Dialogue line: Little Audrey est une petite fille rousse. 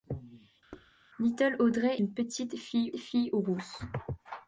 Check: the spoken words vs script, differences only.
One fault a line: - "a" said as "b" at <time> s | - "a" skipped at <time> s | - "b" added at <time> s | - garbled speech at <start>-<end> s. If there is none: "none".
- "est" skipped at 2.0 s
- "fille" added at 3.0 s